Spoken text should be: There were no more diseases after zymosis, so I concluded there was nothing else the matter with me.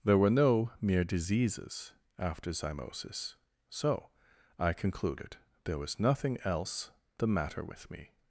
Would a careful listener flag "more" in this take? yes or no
yes